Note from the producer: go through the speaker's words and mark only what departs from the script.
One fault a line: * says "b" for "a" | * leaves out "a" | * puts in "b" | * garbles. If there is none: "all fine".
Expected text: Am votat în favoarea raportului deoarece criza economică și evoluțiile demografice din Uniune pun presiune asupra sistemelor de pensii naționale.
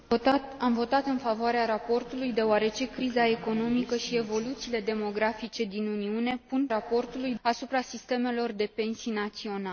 * says "raportului" for "presiune"